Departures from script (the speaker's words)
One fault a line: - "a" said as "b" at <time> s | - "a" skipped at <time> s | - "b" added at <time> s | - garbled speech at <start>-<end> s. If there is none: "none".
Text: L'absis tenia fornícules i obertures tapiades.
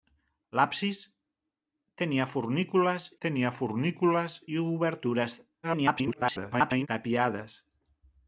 - "tenia fornícules" added at 3.3 s
- garbled speech at 5.6-6.9 s